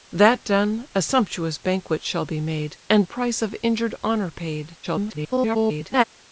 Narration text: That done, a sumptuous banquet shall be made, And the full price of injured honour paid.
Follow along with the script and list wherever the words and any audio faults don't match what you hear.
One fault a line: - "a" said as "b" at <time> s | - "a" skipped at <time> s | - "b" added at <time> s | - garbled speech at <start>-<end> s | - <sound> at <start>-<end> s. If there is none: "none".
- "the full" skipped at 3.0 s
- garbled speech at 4.8-6.0 s